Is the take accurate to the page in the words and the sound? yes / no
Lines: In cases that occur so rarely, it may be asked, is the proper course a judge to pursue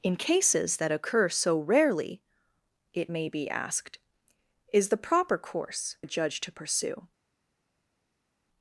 yes